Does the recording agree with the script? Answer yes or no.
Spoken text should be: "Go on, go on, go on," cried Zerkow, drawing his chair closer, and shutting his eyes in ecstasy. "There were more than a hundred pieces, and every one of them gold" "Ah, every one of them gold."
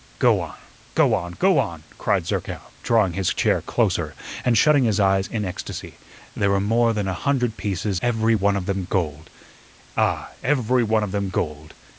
no